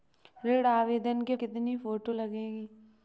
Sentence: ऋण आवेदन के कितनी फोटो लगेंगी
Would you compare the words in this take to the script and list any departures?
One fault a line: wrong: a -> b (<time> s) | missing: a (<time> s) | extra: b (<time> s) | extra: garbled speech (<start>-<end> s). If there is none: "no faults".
no faults